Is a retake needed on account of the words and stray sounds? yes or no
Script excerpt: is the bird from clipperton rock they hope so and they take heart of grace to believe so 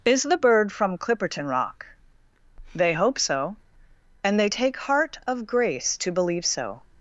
no